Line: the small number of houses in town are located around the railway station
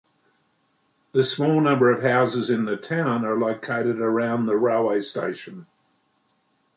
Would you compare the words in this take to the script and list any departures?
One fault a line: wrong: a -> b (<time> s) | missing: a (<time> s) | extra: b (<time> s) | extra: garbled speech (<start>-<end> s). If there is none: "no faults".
extra: the (2.6 s)